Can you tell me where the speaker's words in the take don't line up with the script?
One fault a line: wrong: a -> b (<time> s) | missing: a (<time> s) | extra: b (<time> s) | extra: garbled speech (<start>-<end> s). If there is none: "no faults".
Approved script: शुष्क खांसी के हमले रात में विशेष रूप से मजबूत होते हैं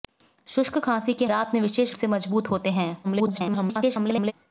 missing: हमले (1.2 s)
missing: रूप (2.0 s)
extra: garbled speech (3.0-4.3 s)